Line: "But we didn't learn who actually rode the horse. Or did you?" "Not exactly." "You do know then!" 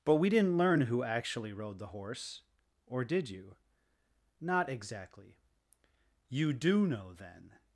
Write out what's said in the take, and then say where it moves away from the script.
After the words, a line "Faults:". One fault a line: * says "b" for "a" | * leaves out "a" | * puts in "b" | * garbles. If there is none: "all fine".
"But we didn't learn who actually rode the horse. Or did you?" "Not exactly." "You do know then!"
Faults:
all fine